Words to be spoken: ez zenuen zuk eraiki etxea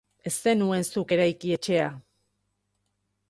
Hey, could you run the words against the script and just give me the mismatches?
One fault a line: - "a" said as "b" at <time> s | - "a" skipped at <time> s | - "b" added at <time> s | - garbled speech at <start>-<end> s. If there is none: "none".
none